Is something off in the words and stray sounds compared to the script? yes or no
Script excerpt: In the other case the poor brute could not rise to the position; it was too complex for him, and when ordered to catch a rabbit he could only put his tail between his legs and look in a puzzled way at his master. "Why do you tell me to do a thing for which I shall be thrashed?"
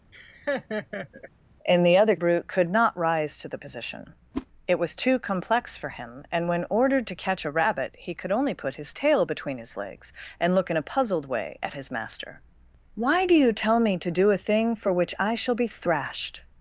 yes